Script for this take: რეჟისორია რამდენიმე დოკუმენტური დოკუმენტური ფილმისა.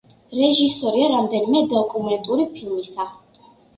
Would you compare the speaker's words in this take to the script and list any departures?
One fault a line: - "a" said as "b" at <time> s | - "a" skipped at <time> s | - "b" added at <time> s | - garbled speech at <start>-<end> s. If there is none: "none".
- "დოკუმენტური" skipped at 2.5 s